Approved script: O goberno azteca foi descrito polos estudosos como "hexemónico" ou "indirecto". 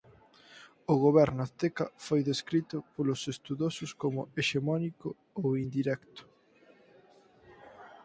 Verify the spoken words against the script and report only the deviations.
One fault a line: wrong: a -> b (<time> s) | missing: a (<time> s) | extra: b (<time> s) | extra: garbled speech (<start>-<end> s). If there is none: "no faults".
no faults